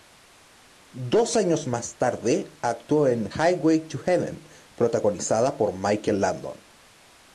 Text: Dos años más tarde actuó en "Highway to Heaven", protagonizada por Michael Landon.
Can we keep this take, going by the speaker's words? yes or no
yes